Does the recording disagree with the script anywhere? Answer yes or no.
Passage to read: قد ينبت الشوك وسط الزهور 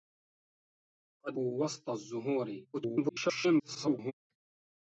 yes